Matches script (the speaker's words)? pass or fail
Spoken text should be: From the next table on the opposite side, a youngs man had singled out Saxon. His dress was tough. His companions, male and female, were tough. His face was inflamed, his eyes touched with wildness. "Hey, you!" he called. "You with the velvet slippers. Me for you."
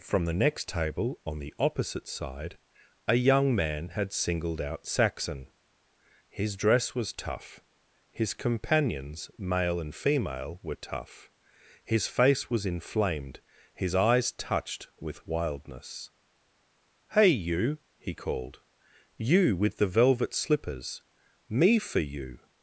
fail